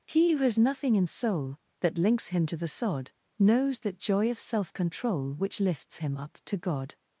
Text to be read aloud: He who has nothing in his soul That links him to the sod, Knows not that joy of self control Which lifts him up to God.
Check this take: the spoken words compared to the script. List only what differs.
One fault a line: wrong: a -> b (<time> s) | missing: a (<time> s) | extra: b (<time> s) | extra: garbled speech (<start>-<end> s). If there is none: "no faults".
missing: his (1.1 s)
missing: not (3.8 s)